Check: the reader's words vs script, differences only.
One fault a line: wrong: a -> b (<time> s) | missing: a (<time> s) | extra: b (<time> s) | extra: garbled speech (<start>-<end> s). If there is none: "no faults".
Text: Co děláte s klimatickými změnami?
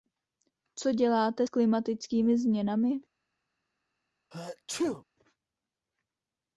no faults